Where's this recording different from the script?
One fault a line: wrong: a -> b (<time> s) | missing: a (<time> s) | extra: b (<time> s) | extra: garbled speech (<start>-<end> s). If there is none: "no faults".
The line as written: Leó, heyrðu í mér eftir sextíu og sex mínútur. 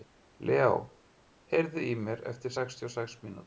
no faults